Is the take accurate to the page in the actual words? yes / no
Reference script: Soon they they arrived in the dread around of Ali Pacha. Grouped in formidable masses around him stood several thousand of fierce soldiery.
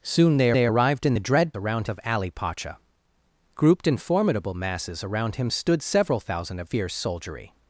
yes